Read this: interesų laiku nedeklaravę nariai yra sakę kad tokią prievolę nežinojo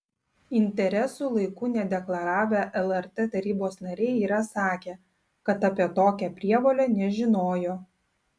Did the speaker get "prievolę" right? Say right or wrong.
right